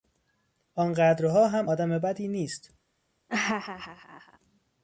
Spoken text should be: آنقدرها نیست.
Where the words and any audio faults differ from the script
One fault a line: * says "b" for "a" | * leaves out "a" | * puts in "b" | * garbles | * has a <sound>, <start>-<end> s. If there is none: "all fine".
* puts in "هم آدم بدی"
* has a laugh, 3.3-4.4 s